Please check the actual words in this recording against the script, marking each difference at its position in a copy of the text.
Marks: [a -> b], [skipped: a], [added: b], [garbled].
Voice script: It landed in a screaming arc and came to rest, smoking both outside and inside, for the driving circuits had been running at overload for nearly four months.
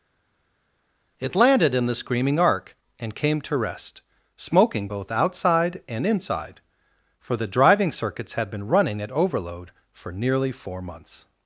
It landed in [a -> the] screaming arc and came to rest, smoking both outside and inside, for the driving circuits had been running at overload for nearly four months.